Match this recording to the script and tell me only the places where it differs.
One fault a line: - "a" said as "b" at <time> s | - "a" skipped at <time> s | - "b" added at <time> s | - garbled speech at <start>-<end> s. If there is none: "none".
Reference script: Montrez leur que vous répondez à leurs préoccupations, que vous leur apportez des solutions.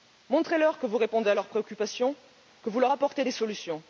none